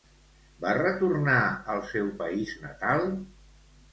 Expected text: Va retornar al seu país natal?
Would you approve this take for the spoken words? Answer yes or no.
yes